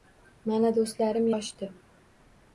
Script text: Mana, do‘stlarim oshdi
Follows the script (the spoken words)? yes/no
yes